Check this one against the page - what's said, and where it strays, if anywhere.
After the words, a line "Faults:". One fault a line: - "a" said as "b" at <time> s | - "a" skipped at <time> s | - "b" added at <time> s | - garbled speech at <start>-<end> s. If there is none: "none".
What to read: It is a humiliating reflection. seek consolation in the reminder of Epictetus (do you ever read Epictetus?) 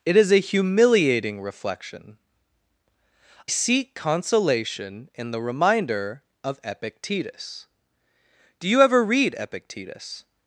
It is a humiliating reflection. seek consolation in the reminder of Epictetus (do you ever read Epictetus?)
Faults:
none